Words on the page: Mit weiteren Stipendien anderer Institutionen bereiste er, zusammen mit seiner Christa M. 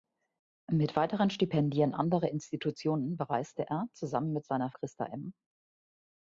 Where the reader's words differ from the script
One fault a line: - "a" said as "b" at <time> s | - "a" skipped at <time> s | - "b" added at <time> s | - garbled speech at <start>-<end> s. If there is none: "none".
none